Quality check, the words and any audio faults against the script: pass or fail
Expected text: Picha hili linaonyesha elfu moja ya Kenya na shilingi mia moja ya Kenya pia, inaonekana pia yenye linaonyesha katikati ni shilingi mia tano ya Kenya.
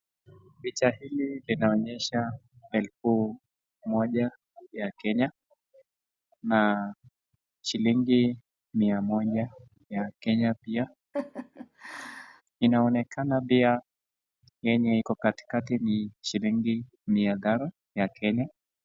fail